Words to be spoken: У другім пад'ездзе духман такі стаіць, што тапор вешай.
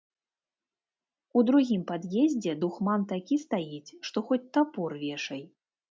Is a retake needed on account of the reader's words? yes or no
yes